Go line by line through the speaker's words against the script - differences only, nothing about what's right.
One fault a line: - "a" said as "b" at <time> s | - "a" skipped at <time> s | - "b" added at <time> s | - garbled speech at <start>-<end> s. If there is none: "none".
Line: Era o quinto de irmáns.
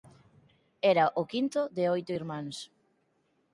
- "oito" added at 1.9 s